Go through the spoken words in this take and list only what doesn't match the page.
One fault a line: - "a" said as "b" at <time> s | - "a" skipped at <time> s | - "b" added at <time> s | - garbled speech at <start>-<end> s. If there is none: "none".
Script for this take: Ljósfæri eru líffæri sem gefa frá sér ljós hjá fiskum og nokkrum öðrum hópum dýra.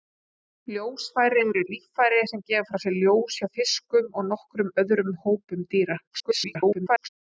- garbled speech at 6.1-7.1 s